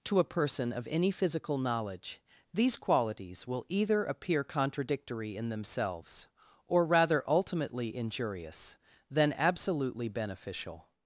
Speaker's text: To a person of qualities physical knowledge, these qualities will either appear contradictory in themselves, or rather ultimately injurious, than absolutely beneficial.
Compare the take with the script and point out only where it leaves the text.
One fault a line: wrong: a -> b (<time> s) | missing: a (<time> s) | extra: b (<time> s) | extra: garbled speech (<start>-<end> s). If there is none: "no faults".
wrong: qualities -> any (0.9 s)